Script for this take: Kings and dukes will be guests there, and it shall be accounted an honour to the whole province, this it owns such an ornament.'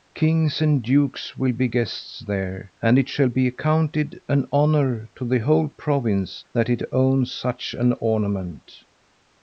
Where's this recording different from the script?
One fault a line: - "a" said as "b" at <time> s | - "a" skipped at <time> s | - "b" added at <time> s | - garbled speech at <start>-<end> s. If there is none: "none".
- "this" said as "that" at 6.5 s